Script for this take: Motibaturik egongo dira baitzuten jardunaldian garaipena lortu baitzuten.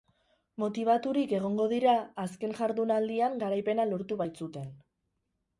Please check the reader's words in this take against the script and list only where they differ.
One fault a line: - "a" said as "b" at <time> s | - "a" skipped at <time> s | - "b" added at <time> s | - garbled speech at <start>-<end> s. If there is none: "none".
- "baitzuten" said as "azken" at 2.2 s